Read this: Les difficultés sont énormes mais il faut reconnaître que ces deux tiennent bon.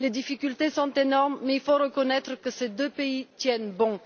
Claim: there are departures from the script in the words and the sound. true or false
true